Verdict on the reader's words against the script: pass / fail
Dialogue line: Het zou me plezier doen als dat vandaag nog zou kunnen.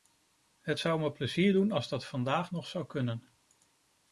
pass